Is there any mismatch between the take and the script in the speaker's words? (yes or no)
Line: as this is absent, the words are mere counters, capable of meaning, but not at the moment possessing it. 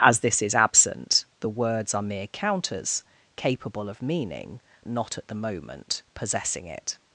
yes